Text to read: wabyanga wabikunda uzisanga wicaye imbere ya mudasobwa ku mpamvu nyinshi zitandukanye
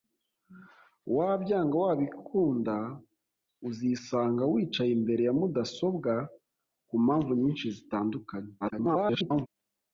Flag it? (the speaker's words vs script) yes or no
yes